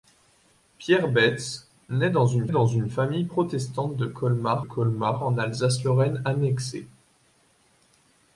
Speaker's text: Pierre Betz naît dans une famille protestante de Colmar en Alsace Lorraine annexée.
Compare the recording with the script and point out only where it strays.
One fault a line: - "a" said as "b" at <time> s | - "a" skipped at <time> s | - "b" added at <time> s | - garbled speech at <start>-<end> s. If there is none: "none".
- "dans une" added at 2.5 s
- "Colmar" added at 4.6 s